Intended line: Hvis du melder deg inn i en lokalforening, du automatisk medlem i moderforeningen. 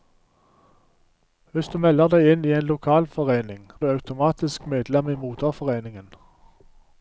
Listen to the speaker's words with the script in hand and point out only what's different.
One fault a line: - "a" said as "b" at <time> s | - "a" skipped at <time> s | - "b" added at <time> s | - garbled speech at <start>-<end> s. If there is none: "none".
none